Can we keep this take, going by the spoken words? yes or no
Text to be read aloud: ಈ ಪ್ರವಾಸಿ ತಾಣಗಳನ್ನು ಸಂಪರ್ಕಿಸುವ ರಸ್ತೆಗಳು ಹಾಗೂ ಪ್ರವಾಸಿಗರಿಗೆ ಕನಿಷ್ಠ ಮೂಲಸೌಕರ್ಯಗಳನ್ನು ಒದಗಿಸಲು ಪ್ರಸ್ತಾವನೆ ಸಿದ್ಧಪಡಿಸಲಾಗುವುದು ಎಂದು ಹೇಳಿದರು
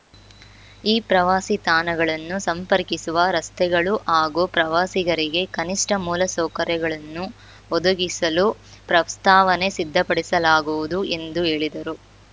yes